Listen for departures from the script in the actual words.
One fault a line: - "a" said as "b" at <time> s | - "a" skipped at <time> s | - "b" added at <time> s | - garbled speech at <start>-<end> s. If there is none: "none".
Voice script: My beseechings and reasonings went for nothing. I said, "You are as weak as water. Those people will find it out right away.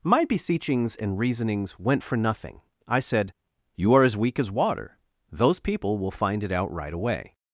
none